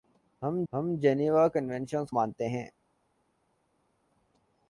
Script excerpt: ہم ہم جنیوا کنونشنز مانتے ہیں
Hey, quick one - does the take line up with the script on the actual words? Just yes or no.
yes